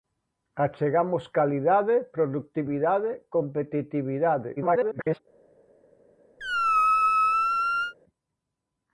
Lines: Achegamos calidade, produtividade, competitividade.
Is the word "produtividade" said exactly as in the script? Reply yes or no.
yes